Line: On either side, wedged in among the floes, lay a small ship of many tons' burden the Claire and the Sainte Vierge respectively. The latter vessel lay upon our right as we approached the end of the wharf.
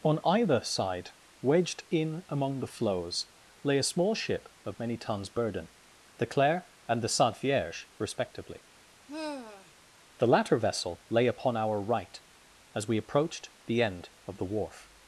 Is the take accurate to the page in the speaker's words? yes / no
yes